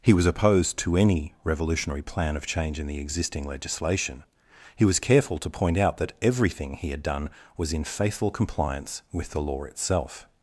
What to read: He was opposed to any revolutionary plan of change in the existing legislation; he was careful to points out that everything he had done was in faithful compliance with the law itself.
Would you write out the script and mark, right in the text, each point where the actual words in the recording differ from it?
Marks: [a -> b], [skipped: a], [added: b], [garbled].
He was opposed to any revolutionary plan of change in the existing legislation; he was careful to [points -> point] out that everything he had done was in faithful compliance with the law itself.